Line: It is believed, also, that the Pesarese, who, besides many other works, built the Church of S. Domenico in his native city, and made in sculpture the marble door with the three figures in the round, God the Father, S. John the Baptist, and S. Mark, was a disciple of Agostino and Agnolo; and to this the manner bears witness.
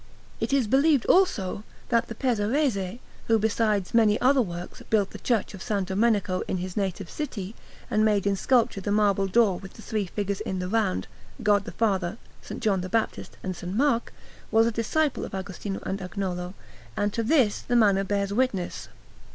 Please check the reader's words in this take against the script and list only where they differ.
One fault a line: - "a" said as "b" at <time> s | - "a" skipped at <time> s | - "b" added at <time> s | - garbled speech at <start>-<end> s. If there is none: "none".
none